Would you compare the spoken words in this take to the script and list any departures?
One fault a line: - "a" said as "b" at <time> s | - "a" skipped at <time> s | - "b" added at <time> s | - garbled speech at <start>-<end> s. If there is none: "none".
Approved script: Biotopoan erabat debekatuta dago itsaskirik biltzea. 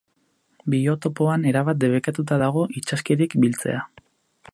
none